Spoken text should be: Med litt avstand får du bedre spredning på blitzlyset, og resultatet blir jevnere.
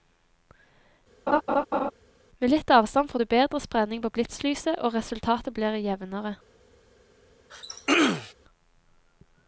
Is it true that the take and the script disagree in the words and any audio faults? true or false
true